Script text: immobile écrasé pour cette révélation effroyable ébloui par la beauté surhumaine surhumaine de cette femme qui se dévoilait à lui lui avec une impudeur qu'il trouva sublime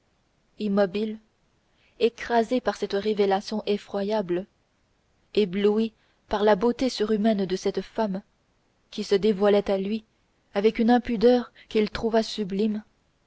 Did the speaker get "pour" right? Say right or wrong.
wrong